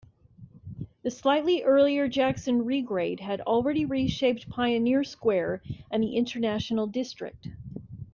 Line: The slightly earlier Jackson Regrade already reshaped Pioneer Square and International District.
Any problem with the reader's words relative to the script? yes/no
yes